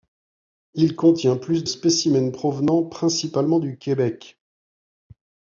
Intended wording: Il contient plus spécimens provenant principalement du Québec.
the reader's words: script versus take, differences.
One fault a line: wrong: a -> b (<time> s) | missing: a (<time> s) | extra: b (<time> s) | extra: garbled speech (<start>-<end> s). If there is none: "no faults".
no faults